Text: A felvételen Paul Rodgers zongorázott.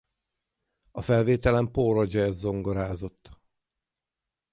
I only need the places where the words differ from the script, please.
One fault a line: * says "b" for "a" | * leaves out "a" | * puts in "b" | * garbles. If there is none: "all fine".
all fine